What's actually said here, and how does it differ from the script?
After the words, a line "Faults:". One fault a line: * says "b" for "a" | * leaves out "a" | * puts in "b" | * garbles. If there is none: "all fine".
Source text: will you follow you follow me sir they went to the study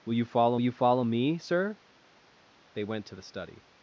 will you follow you follow me sir they went to the study
Faults:
all fine